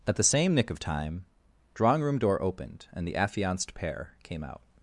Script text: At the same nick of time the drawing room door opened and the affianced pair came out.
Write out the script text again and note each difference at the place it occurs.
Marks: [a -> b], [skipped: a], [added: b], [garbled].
At the same nick of time [skipped: the] drawing room door opened and the affianced pair came out.